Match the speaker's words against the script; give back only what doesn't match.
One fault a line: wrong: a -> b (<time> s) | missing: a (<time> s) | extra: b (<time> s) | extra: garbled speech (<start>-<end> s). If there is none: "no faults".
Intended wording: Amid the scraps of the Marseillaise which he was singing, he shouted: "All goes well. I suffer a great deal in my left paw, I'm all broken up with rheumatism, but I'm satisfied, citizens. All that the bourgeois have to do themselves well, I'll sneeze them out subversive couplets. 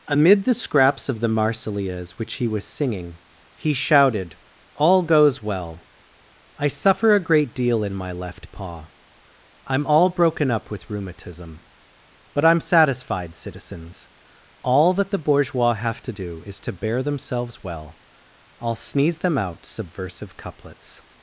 extra: is to bear (16.5 s)